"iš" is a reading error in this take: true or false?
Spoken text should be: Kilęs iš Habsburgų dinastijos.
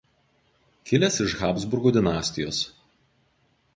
false